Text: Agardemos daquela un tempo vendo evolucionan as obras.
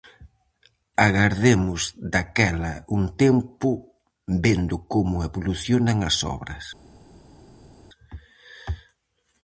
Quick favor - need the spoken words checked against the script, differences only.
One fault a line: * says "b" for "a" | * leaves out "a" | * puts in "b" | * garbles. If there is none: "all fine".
* puts in "como"